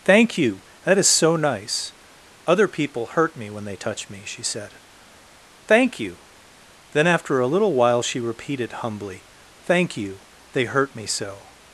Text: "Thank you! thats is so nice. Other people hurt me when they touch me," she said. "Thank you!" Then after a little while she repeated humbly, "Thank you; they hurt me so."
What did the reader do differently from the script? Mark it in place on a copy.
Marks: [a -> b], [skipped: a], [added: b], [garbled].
"Thank you! [thats -> that] is so nice. Other people hurt me when they touch me," she said. "Thank you!" Then after a little while she repeated humbly, "Thank you; they hurt me so."